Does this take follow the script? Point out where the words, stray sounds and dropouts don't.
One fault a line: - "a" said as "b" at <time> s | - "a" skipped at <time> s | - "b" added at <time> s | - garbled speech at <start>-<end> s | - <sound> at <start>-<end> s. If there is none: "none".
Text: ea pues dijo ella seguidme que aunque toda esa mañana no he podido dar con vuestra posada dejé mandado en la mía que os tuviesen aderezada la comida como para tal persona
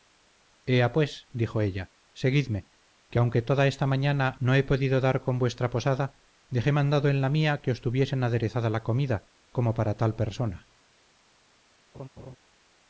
- "esa" said as "esta" at 3.7 s
- laugh at 11.9-12.4 s